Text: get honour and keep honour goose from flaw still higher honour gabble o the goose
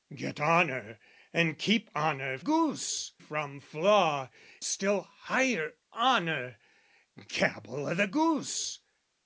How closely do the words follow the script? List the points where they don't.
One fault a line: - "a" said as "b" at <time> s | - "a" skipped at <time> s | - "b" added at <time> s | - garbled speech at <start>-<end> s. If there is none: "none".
none